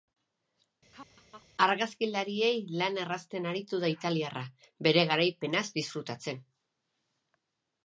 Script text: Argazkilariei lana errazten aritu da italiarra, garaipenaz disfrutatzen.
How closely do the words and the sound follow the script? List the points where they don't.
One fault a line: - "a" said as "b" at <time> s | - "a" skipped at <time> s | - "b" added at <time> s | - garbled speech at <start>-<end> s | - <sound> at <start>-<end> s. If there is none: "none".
- laugh at 0.9-1.5 s
- "bere" added at 4.9 s